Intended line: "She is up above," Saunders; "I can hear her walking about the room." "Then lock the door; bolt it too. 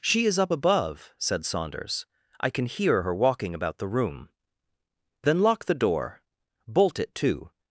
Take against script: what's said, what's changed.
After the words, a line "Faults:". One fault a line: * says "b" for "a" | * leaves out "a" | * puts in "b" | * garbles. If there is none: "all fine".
"She is up above," said Saunders; "I can hear her walking about the room." "Then lock the door; bolt it too.
Faults:
* puts in "said"